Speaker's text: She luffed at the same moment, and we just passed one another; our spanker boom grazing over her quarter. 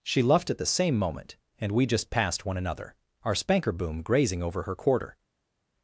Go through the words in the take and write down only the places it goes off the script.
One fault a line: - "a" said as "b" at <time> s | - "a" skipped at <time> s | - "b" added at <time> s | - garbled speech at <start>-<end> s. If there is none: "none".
none